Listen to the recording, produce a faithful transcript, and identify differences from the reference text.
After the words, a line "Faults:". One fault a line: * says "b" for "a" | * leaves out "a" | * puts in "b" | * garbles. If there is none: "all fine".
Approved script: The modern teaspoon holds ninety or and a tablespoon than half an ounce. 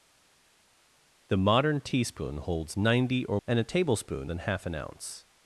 The modern teaspoon holds ninety or and a tablespoon than half an ounce.
Faults:
all fine